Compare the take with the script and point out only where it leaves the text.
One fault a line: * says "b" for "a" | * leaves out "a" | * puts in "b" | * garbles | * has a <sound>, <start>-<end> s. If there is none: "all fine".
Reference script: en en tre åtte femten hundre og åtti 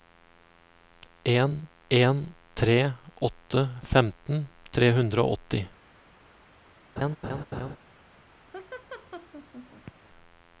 * puts in "tre"
* has a laugh, 7.0-7.8 s
* has a laugh, 8.5-9.9 s